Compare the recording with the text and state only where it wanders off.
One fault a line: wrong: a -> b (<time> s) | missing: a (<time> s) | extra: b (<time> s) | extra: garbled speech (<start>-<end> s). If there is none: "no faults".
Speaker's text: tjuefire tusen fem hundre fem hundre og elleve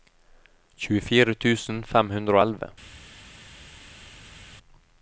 missing: fem hundre (2.4 s)